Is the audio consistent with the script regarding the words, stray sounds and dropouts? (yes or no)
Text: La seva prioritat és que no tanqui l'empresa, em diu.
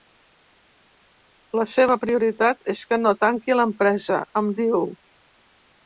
yes